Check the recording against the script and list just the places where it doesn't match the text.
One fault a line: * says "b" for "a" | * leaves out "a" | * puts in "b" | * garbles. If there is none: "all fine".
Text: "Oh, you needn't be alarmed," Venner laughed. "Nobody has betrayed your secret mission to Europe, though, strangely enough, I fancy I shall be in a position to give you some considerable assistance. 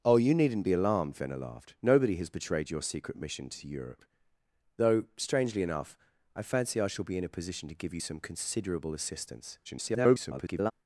* garbles